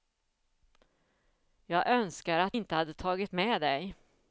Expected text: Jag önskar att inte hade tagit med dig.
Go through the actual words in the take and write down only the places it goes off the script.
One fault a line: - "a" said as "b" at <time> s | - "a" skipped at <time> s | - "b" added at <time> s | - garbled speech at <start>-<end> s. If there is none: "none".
none